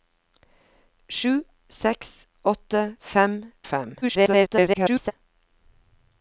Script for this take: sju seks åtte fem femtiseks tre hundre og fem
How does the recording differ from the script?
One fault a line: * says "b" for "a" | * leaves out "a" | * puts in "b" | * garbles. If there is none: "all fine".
* leaves out "femtiseks tre hundre"
* garbles